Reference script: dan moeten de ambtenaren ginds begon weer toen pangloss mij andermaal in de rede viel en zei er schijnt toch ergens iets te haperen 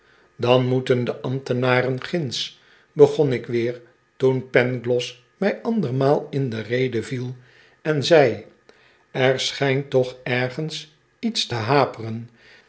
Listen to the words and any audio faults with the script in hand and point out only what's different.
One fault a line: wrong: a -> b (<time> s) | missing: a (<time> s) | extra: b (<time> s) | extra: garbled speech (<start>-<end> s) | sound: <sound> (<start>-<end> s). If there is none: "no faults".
extra: ik (3.3 s)